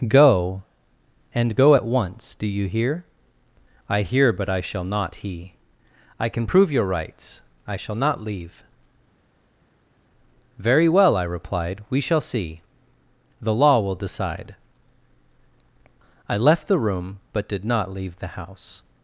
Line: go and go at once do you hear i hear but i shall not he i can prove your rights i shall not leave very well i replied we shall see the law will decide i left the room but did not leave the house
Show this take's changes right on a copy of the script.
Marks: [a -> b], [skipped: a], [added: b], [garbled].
go and go at once do you hear i hear but i shall not he i can prove your rights i shall not leave very well i replied we shall see the law will decide i left the room but did not leave the house